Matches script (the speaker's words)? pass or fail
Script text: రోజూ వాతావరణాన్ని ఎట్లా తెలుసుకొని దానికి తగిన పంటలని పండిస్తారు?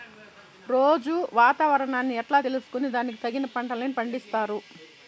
pass